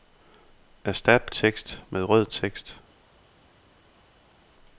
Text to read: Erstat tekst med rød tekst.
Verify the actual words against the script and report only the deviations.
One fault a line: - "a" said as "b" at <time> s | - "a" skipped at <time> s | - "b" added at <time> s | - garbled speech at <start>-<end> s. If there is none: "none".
none